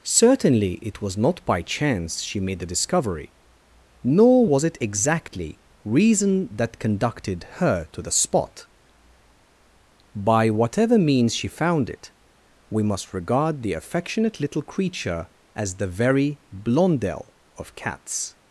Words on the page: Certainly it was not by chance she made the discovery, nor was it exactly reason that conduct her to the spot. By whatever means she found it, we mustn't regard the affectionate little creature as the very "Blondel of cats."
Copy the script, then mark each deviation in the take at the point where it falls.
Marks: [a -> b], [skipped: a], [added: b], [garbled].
Certainly it was not by chance she made the discovery, nor was it exactly reason that [conduct -> conducted] her to the spot. By whatever means she found it, we [mustn't -> must] regard the affectionate little creature as the very "Blondel of cats."